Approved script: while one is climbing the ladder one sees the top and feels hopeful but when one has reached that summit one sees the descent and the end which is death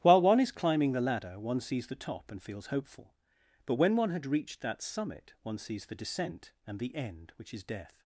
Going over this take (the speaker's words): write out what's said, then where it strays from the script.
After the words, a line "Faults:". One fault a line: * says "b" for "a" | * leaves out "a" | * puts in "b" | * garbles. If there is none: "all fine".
while one is climbing the ladder one sees the top and feels hopeful but when one had reached that summit one sees the descent and the end which is death
Faults:
* says "had" for "has"